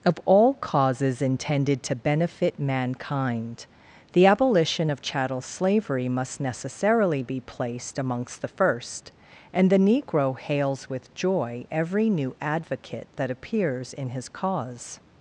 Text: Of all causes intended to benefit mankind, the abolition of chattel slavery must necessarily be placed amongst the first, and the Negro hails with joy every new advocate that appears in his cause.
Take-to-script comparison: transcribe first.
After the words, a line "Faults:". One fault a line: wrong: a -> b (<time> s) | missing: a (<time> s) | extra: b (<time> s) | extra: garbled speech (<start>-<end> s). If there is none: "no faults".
Of all causes intended to benefit mankind, the abolition of chattel slavery must necessarily be placed amongst the first, and the Negro hails with joy every new advocate that appears in his cause.
Faults:
no faults